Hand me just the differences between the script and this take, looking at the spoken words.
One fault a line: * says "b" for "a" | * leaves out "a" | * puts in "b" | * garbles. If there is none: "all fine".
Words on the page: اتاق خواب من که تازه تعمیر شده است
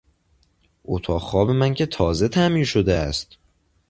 all fine